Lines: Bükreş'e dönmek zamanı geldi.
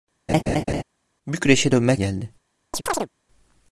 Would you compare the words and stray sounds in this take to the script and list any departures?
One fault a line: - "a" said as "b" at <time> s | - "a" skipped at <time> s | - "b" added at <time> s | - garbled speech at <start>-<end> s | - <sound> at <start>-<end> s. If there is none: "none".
- laugh at 0.3-0.8 s
- "zamanı" skipped at 2.0 s
- chirp at 2.7-3.1 s